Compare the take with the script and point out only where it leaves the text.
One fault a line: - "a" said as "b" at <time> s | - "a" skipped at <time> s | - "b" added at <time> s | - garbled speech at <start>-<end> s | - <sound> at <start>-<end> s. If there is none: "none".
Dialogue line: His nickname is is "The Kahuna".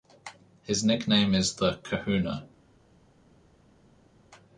- "is" skipped at 1.6 s